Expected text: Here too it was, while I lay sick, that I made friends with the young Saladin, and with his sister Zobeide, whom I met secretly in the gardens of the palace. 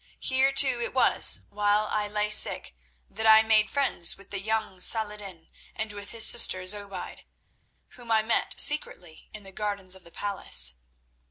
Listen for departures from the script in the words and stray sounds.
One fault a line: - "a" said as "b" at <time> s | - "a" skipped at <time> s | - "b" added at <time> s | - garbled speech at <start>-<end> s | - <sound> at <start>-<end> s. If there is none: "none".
none